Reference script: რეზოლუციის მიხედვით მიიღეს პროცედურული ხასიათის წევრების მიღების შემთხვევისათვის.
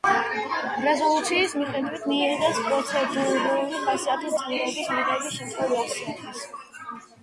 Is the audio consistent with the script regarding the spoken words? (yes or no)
yes